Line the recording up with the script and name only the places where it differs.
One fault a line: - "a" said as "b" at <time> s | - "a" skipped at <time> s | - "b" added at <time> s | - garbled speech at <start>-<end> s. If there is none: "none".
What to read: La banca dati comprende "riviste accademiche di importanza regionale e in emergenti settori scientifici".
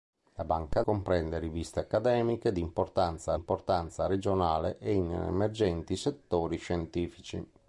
- "dati" skipped at 0.8 s
- "importanza" added at 3.3 s